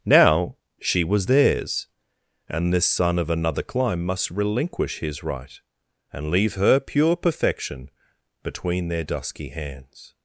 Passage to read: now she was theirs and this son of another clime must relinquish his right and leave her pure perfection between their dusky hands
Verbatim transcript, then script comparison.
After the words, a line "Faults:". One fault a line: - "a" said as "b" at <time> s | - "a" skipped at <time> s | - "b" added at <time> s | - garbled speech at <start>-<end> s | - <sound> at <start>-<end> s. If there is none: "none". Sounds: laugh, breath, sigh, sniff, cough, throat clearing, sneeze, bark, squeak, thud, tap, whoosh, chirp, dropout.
now she was theirs and this son of another clime must relinquish his right and leave her pure perfection between their dusky hands
Faults:
none